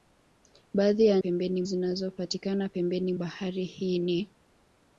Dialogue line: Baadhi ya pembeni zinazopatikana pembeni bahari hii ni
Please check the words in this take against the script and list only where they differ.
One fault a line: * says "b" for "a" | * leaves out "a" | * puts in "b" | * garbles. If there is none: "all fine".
all fine